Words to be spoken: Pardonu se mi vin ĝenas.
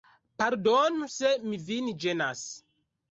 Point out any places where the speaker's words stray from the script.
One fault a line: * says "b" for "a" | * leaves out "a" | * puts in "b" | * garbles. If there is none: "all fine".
all fine